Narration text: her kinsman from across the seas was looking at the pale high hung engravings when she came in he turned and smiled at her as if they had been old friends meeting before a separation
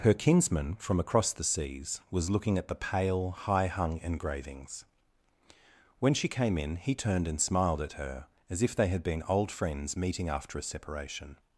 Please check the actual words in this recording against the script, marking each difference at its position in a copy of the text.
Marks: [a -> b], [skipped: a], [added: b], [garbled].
her kinsman from across the seas was looking at the pale high hung engravings when she came in he turned and smiled at her as if they had been old friends meeting [before -> after] a separation